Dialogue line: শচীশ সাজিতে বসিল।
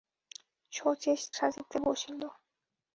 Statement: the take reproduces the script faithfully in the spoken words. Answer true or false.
true